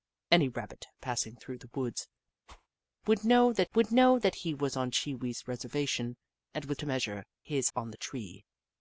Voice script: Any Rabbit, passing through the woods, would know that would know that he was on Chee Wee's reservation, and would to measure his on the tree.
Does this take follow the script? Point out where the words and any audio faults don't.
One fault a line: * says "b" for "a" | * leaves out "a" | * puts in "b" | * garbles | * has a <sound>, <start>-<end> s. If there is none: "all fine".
* has a whoosh, 2.5-2.7 s